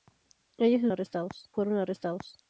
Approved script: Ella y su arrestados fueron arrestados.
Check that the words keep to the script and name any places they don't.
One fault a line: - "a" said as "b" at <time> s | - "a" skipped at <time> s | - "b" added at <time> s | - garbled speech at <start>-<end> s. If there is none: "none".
none